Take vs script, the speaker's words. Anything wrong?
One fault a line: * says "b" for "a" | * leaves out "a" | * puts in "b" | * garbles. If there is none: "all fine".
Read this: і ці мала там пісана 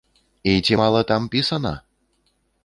all fine